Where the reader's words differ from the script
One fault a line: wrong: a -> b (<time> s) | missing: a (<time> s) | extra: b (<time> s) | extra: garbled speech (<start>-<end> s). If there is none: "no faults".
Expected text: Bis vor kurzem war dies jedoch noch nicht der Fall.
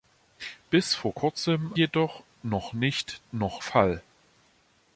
missing: war dies (1.7 s)
wrong: der -> noch (3.3 s)